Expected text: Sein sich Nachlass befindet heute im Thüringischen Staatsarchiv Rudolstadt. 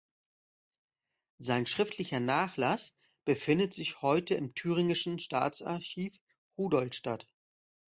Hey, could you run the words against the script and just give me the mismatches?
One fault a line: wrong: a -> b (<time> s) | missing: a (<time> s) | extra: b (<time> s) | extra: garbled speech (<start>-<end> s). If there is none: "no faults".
wrong: sich -> schriftlicher (1.7 s)
extra: sich (3.7 s)